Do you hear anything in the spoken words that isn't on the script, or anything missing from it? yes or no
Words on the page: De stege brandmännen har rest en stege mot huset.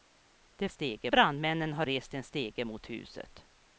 no